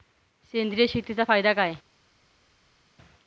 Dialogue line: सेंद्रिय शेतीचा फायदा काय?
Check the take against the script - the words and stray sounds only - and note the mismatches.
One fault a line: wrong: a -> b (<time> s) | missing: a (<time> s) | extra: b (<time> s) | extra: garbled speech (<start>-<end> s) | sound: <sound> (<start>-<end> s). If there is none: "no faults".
no faults